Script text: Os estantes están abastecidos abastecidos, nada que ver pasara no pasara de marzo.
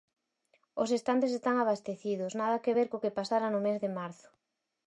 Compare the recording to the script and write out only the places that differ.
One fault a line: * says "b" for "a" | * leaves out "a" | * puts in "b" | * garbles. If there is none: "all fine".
* leaves out "abastecidos"
* puts in "co que"
* says "mes" for "pasara"